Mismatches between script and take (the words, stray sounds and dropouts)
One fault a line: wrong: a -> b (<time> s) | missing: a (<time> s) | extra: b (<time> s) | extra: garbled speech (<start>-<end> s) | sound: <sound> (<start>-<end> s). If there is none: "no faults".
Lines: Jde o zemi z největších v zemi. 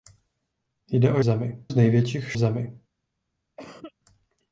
sound: cough (3.6-3.9 s)